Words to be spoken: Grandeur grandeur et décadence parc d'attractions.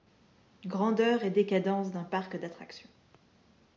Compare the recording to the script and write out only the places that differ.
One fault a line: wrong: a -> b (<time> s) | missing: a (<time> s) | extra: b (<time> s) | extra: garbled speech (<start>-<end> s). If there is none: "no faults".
missing: grandeur (1.2 s)
extra: d'un (1.9 s)